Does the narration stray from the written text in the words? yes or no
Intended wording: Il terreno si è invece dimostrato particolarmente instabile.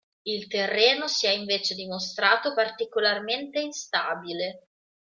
no